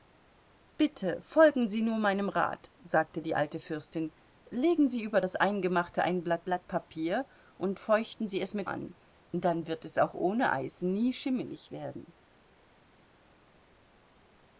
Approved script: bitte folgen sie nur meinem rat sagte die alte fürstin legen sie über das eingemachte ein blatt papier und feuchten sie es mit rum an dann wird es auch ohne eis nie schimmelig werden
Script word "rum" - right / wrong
wrong